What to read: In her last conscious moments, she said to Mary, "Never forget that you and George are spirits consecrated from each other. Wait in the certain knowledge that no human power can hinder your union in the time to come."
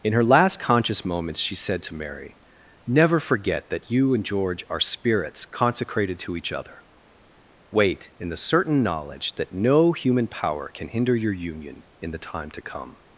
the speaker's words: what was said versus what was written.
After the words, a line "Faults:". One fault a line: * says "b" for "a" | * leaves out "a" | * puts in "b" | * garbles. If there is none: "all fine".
In her last conscious moments, she said to Mary, "Never forget that you and George are spirits consecrated to each other. Wait in the certain knowledge that no human power can hinder your union in the time to come."
Faults:
* says "to" for "from"